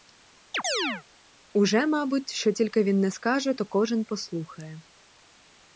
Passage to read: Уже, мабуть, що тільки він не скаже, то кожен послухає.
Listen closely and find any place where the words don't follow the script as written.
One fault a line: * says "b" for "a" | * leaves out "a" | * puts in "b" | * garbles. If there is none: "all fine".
all fine